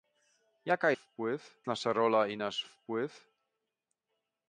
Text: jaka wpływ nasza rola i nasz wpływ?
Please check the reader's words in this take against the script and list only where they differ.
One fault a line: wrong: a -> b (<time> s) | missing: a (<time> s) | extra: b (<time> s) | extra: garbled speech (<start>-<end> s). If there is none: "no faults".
no faults